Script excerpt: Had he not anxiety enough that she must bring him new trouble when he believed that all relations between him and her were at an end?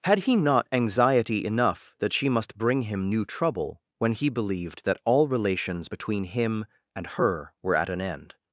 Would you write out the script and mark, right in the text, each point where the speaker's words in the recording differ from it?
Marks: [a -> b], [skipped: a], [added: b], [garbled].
Had he not anxiety enough that she must bring him new trouble when he believed that all relations between him and her were at an end?